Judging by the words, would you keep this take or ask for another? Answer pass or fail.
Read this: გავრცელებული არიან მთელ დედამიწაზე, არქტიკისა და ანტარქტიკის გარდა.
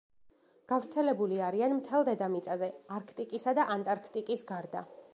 pass